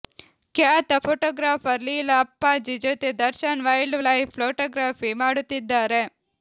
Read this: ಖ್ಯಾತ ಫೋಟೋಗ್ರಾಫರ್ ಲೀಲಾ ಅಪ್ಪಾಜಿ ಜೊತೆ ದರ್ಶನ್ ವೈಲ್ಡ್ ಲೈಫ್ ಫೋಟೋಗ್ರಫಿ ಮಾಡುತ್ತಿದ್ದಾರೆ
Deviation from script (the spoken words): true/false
false